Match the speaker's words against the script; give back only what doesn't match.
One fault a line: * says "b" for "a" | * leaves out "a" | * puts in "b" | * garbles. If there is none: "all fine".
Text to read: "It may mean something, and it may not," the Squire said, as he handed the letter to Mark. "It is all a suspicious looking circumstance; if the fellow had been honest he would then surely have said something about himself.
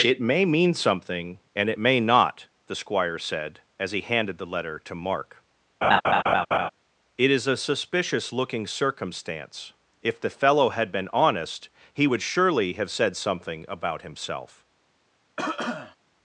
* leaves out "all"
* leaves out "then"